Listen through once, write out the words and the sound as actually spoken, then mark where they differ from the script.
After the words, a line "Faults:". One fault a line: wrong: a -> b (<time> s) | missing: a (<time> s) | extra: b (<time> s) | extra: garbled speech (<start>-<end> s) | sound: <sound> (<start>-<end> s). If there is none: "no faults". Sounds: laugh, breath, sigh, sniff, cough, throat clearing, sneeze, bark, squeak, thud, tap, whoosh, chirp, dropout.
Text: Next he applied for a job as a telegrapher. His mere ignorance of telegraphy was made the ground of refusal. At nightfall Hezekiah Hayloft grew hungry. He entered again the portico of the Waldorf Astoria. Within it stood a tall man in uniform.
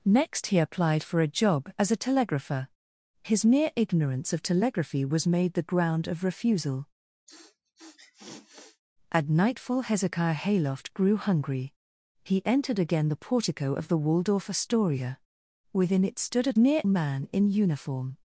Next he applied for a job as a telegrapher. His mere ignorance of telegraphy was made the ground of refusal. At nightfall Hezekiah Hayloft grew hungry. He entered again the portico of the Waldorf Astoria. Within it stood a mere man in uniform.
Faults:
sound: sniff (7.3-8.8 s)
wrong: tall -> mere (16.6 s)